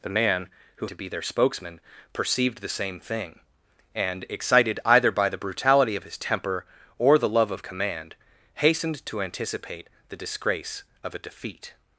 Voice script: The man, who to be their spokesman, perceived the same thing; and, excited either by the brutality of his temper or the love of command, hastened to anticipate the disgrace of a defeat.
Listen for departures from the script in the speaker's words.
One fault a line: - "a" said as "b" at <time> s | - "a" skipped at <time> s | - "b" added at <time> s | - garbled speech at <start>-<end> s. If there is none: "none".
none